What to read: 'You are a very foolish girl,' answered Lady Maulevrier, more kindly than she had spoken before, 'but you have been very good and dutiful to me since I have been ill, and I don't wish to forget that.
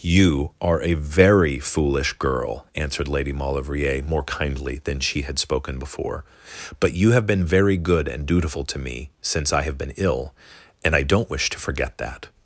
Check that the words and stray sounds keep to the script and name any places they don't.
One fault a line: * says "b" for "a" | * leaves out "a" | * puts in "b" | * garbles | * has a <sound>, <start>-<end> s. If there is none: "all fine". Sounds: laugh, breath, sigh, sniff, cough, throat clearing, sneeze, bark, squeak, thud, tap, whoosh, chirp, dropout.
all fine